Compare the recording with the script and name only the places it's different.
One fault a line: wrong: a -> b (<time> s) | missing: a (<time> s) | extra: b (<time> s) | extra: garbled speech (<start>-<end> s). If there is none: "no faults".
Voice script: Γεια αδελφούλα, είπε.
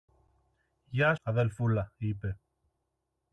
no faults